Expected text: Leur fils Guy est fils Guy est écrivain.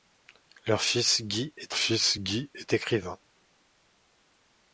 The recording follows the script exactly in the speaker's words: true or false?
true